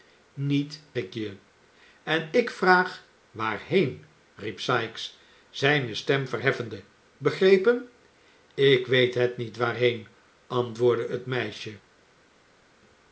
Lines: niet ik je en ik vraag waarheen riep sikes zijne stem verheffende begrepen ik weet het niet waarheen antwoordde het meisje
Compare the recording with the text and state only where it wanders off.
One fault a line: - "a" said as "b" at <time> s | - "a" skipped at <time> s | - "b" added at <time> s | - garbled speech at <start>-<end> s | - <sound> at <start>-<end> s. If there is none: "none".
none